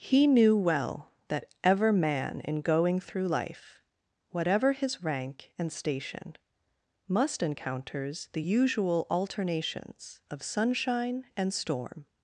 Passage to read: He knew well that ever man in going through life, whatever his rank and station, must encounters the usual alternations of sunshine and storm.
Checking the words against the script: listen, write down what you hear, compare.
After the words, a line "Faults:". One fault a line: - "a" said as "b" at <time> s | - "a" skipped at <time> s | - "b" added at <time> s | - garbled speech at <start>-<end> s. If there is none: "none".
He knew well that ever man in going through life, whatever his rank and station, must encounters the usual alternations of sunshine and storm.
Faults:
none